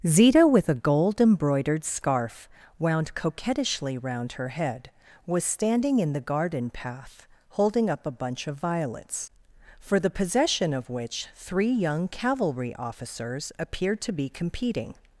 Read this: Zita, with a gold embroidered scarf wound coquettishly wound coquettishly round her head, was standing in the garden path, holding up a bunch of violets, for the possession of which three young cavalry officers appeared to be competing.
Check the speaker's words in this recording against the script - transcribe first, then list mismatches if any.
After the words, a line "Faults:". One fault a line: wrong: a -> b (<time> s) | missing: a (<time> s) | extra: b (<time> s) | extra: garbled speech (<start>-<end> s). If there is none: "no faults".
Zita, with a gold embroidered scarf wound coquettishly round her head, was standing in the garden path, holding up a bunch of violets, for the possession of which three young cavalry officers appeared to be competing.
Faults:
missing: wound coquettishly (4.0 s)